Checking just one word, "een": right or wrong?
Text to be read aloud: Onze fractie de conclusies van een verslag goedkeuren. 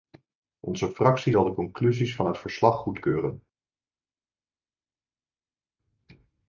wrong